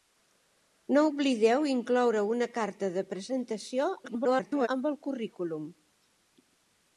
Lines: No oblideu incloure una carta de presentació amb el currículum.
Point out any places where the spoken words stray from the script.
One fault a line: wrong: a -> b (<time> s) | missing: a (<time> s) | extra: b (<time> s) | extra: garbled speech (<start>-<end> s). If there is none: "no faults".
extra: garbled speech (4.0-4.7 s)